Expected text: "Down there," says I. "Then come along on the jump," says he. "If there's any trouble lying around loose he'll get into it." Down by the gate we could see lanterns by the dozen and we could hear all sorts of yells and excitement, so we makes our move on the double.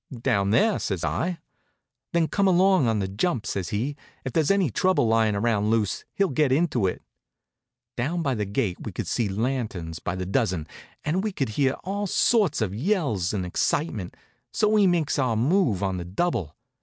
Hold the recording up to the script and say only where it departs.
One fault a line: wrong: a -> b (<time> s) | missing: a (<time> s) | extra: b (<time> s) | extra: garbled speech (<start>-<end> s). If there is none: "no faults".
no faults